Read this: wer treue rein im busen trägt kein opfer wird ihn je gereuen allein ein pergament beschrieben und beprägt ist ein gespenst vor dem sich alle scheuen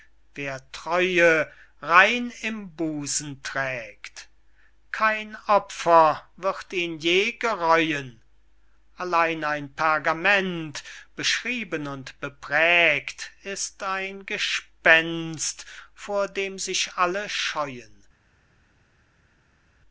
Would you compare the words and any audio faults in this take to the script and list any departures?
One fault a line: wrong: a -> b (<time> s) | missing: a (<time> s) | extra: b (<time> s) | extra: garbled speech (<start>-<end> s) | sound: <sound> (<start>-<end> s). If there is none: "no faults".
no faults